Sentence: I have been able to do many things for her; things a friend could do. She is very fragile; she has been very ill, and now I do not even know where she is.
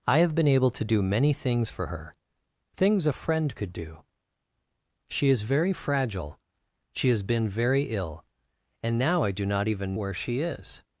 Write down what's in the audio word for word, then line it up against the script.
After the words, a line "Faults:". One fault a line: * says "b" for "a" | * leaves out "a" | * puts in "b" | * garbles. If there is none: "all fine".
I have been able to do many things for her; things a friend could do. She is very fragile; she has been very ill, and now I do not even where she is.
Faults:
* leaves out "know"